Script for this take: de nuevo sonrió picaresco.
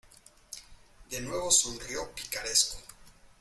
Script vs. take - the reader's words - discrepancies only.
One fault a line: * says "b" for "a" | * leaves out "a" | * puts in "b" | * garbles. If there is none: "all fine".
all fine